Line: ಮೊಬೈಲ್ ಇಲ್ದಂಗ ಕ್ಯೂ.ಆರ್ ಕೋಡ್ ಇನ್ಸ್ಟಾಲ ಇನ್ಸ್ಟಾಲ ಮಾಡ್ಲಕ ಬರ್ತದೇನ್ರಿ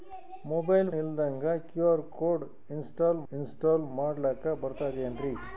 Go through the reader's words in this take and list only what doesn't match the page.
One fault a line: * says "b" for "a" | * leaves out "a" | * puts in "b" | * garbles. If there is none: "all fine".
all fine